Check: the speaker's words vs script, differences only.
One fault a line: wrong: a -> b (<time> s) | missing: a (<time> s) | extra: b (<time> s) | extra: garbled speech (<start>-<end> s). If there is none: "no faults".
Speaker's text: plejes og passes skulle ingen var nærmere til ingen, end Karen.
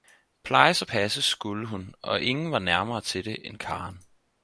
extra: hun og (1.7 s)
wrong: ingen -> det (3.2 s)